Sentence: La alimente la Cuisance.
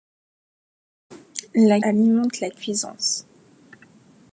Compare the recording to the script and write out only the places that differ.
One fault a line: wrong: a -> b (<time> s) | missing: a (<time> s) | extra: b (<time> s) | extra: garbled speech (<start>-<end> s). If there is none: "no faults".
no faults